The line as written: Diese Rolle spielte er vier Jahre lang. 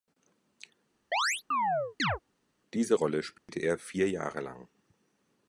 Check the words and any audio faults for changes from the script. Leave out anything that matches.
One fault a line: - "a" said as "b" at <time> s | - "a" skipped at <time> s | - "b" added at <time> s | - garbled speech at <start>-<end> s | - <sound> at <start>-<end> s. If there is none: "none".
- chirp at 1.1-2.2 s
- dropout at 3.4-3.5 s